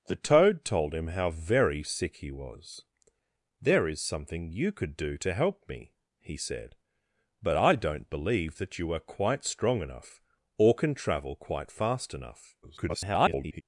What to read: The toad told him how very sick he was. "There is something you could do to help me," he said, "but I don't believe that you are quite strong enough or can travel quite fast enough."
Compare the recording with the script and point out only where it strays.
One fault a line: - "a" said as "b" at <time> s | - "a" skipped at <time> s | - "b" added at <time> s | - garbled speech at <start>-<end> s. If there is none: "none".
- garbled speech at 12.6-13.6 s